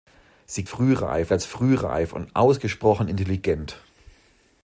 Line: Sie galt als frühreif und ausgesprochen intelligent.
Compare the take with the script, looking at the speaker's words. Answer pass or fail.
fail